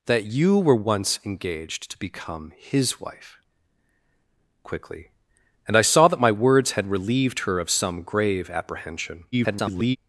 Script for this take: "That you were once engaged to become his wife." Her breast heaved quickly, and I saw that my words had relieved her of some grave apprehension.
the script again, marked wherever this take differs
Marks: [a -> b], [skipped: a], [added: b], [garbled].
"That you were once engaged to become his wife." [skipped: Her breast heaved] quickly, and I saw that my words had relieved her of some grave apprehension. [garbled]